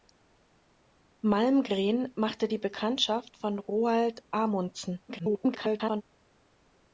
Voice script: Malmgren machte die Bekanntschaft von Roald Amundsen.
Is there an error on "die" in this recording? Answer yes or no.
no